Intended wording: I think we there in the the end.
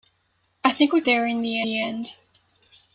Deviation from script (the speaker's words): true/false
false